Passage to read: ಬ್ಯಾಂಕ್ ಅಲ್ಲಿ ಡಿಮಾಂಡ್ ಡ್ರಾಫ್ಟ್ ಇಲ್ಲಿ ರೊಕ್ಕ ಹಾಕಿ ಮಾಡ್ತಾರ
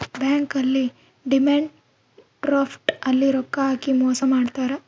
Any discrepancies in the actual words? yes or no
yes